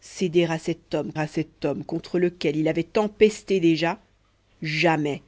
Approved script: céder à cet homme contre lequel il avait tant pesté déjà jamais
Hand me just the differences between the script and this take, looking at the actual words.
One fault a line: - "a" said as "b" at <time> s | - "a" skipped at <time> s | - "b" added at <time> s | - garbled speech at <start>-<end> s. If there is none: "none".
- "à cet homme" added at 1.1 s